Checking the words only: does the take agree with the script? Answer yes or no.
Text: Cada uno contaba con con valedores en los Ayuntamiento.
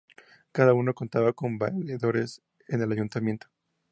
no